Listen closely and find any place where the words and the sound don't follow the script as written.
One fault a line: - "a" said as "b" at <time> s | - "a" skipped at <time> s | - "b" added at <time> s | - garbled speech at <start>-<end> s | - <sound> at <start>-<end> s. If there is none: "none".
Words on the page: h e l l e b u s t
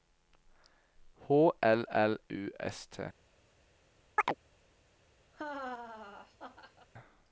- "e" skipped at 1.5 s
- "e b" skipped at 2.2 s
- chirp at 4.2-4.3 s
- laugh at 5.3-6.9 s